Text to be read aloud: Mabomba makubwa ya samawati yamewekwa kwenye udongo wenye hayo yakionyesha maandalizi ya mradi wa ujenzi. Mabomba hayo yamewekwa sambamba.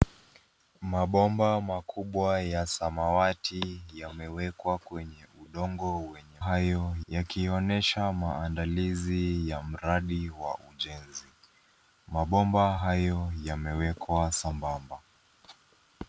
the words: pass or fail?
pass